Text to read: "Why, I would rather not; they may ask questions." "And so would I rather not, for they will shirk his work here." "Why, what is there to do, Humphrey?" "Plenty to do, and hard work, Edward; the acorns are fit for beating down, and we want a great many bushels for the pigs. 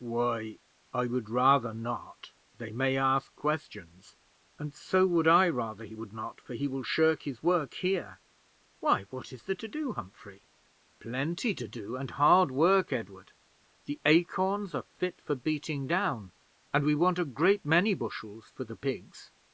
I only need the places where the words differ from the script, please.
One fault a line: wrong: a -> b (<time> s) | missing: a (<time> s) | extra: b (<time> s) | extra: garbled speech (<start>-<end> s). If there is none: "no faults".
extra: he would (5.8 s)
wrong: they -> he (6.5 s)